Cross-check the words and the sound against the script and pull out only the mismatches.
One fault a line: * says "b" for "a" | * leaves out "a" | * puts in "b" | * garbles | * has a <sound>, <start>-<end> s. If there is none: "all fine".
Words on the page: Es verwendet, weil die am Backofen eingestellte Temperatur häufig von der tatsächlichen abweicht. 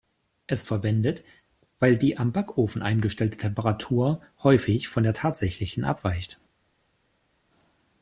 all fine